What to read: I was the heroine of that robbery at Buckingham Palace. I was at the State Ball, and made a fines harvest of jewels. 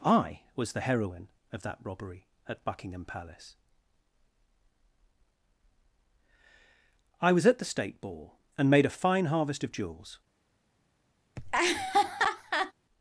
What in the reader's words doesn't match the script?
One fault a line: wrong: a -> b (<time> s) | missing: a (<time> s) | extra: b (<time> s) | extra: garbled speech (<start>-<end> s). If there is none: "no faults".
wrong: fines -> fine (8.9 s)